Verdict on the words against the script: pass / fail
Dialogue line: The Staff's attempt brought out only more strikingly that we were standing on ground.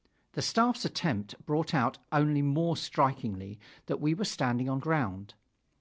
pass